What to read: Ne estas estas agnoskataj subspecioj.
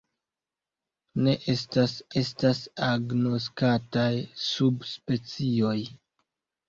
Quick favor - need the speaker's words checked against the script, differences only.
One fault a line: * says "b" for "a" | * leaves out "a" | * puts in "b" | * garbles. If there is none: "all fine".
all fine